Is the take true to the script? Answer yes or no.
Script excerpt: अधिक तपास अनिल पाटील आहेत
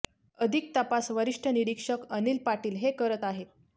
no